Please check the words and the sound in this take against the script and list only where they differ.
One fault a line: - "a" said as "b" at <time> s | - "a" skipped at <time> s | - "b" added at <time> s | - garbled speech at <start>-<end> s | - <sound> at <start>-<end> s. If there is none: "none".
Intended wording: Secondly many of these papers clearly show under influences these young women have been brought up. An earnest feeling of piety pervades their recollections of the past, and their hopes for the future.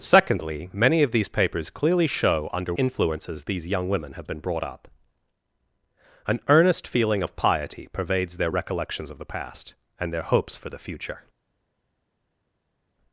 none